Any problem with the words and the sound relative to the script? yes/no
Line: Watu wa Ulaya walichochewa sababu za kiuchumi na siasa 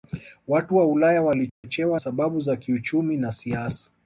yes